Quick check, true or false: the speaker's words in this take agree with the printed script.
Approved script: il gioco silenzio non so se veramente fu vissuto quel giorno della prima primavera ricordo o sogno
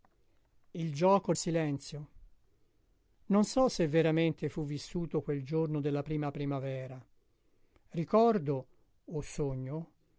true